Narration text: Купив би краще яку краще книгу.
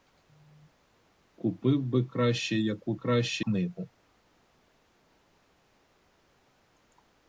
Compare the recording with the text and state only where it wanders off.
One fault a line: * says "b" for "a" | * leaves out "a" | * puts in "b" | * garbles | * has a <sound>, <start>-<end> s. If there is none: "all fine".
all fine